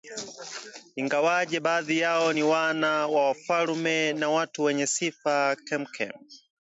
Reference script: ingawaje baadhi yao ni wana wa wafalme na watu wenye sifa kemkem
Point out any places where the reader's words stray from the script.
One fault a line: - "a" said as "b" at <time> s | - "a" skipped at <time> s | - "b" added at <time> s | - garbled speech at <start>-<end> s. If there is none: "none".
none